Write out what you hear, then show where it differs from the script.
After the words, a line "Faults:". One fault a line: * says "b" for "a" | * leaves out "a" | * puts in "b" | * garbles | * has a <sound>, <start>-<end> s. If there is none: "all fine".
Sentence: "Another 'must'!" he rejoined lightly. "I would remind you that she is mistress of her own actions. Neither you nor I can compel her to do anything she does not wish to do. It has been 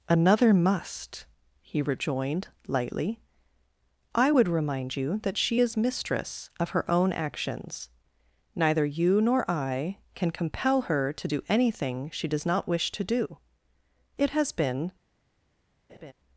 "Another 'must'!" he rejoined lightly. "I would remind you that she is mistress of her own actions. Neither you nor I can compel her to do anything she does not wish to do. It has been
Faults:
* has a laugh, 15.9-16.1 s